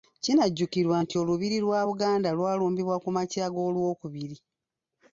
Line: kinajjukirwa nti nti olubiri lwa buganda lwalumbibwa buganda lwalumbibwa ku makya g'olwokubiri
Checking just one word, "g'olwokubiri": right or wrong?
right